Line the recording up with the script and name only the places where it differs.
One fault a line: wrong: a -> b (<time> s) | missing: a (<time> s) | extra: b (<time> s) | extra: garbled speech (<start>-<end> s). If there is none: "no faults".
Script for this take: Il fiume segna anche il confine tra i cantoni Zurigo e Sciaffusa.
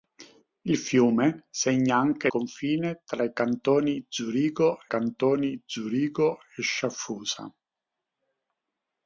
missing: il (2.3 s)
extra: cantoni Zurigo (4.9 s)